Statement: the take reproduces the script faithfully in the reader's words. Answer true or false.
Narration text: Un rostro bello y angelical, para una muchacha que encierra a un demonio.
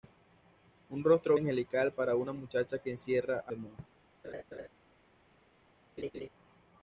false